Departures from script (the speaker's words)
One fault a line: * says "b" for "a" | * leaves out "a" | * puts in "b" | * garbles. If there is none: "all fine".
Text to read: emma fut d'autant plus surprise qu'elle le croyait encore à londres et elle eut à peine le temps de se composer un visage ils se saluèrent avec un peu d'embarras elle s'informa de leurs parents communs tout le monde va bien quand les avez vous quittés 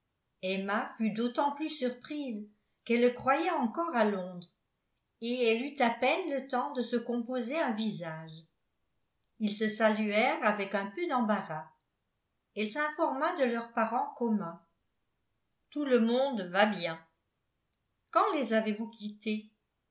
all fine